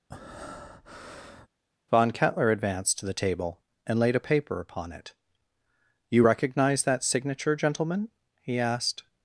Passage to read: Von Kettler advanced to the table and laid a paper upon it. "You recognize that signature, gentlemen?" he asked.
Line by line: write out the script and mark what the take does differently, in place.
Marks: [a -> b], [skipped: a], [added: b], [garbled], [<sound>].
[breath] Von Kettler advanced to the table and laid a paper upon it. "You recognize that signature, gentlemen?" he asked.